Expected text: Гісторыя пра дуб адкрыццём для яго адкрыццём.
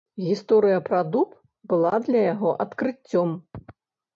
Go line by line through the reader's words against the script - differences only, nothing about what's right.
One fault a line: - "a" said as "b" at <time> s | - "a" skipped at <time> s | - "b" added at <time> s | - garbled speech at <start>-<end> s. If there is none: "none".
- "адкрыццём" said as "была" at 1.7 s